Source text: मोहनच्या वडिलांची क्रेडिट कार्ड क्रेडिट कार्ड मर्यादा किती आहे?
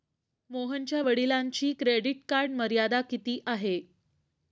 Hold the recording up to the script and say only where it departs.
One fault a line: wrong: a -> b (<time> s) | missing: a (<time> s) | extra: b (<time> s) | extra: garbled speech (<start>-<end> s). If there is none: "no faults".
missing: क्रेडिट कार्ड (2.5 s)